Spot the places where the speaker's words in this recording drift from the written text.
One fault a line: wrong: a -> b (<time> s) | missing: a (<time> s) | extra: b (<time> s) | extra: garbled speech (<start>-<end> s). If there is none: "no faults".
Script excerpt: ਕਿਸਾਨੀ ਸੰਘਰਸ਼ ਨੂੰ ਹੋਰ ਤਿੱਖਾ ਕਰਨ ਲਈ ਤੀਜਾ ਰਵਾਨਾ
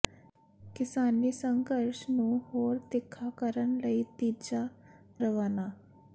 no faults